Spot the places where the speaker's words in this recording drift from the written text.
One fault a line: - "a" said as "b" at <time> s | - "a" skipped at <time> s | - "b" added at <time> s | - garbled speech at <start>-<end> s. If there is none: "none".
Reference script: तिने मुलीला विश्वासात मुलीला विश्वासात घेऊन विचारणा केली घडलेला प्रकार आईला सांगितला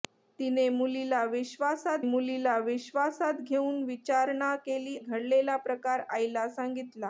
none